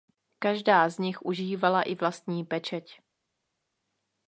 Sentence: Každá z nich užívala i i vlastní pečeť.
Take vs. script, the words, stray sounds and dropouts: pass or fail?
fail